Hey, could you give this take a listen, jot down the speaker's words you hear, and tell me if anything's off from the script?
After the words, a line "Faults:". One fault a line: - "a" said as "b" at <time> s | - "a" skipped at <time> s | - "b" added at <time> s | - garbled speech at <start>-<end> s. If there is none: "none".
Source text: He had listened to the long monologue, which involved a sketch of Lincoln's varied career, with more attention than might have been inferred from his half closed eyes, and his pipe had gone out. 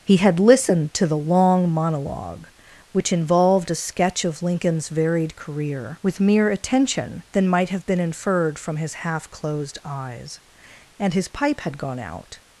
He had listened to the long monologue, which involved a sketch of Lincoln's varied career, with mere attention than might have been inferred from his half closed eyes, and his pipe had gone out.
Faults:
- "more" said as "mere" at 6.2 s